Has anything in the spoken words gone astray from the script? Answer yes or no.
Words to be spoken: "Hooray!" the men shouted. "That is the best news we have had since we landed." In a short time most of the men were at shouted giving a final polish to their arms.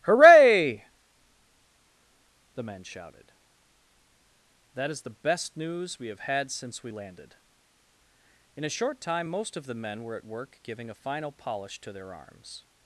yes